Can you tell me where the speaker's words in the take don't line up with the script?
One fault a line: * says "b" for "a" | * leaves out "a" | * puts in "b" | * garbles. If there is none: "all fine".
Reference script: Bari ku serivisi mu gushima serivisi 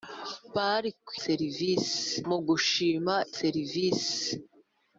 all fine